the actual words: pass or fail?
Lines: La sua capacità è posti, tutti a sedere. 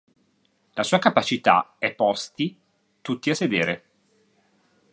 pass